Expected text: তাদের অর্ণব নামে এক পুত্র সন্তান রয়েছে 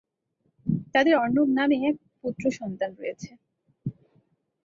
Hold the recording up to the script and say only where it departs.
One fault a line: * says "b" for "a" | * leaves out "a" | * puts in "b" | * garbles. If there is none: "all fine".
all fine